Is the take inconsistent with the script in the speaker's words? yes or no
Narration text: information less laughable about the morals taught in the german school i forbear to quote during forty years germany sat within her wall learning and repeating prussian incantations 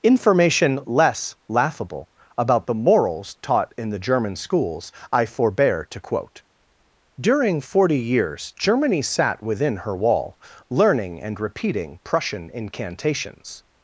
yes